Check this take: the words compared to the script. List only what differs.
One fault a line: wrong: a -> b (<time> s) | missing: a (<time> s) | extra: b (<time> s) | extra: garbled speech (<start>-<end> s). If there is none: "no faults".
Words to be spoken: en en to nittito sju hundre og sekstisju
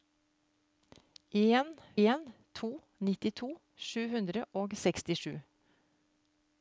no faults